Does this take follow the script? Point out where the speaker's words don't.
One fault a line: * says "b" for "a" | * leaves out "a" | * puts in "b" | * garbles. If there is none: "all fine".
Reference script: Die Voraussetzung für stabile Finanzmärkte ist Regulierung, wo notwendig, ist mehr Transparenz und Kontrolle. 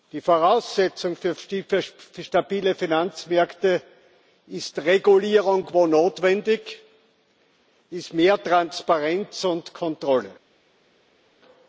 all fine